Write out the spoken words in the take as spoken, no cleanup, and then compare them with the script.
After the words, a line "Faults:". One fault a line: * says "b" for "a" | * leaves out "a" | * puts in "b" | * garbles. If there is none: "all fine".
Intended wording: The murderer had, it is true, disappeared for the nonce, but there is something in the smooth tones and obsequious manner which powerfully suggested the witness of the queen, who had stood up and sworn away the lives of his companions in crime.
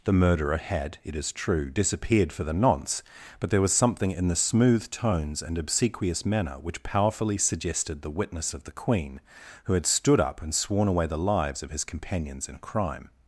The murderer had, it is true, disappeared for the nonce, but there was something in the smooth tones and obsequious manner which powerfully suggested the witness of the queen, who had stood up and sworn away the lives of his companions in crime.
Faults:
* says "was" for "is"